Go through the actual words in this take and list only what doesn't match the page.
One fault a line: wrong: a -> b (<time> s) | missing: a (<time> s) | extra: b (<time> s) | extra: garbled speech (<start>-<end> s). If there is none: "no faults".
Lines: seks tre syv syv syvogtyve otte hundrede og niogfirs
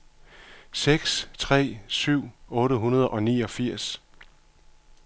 missing: syv syvogtyve (2.2 s)